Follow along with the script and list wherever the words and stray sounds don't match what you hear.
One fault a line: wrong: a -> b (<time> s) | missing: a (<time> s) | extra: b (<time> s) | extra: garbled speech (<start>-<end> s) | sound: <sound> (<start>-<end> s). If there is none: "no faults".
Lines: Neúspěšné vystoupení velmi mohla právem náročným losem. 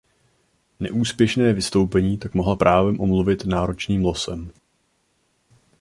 wrong: velmi -> tak (2.2 s)
extra: omluvit (3.0 s)